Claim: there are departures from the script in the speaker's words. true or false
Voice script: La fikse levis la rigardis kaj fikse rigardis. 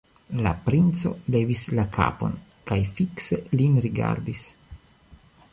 true